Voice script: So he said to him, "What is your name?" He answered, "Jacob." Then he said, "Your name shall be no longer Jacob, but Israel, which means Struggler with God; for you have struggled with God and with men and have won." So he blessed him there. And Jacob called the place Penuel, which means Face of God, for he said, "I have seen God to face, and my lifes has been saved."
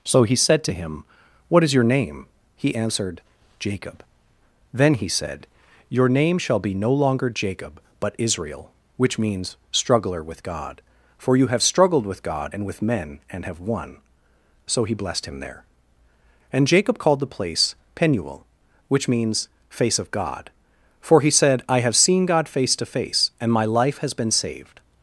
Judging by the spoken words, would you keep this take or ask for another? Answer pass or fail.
fail